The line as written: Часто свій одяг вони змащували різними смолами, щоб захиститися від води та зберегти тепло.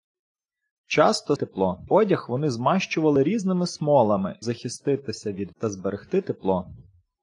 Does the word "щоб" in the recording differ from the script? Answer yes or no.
yes